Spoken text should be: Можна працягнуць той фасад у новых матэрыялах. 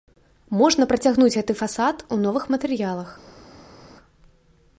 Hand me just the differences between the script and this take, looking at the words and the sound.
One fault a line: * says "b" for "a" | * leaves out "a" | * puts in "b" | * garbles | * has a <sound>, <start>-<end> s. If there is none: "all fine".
* says "гэты" for "той"